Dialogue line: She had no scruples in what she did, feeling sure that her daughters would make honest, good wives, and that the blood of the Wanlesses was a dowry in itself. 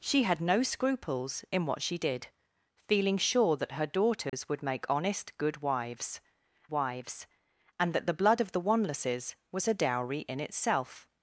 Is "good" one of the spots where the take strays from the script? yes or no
no